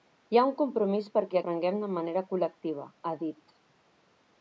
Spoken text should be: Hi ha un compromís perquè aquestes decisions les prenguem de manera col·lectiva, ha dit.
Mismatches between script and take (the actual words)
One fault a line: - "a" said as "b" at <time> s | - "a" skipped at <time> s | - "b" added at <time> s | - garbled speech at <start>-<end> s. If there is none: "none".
- "aquestes decisions les" skipped at 1.4 s